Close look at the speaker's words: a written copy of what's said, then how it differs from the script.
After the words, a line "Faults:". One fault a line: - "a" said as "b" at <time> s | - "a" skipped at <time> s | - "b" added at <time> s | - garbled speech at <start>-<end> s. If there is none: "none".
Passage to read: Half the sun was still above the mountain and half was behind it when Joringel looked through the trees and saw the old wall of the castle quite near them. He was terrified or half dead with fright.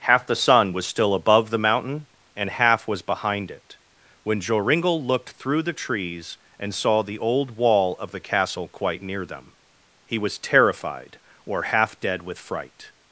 Half the sun was still above the mountain and half was behind it when Joringel looked through the trees and saw the old wall of the castle quite near them. He was terrified or half dead with fright.
Faults:
none